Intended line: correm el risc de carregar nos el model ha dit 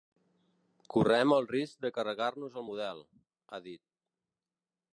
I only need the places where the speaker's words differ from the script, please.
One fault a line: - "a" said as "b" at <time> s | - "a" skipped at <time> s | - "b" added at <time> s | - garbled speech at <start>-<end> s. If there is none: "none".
none